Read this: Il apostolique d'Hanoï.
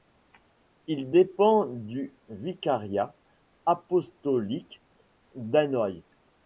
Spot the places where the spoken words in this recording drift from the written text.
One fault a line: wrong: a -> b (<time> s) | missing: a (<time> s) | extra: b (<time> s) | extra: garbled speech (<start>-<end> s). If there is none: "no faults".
extra: dépend du vicariat (1.1 s)